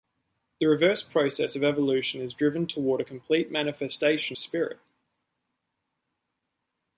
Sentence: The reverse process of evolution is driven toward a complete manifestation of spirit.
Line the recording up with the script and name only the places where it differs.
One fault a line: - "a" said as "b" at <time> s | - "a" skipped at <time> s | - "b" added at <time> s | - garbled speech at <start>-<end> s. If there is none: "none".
- "of" skipped at 4.4 s